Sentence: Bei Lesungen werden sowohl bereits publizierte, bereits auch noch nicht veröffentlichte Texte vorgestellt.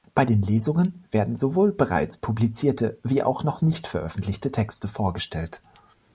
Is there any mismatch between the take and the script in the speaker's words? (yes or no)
yes